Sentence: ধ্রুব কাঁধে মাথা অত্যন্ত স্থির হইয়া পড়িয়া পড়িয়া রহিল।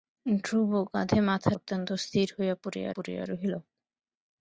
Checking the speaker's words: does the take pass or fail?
pass